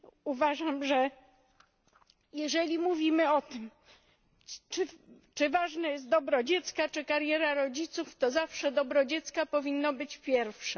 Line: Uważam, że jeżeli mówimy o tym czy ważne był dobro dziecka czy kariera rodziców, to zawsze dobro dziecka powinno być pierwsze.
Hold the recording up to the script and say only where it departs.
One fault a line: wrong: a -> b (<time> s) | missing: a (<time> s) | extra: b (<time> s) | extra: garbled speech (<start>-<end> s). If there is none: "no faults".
wrong: był -> jest (5.9 s)